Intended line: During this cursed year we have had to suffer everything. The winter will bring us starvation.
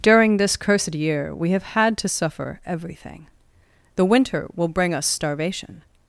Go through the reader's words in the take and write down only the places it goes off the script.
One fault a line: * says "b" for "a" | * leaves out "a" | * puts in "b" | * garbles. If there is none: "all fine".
all fine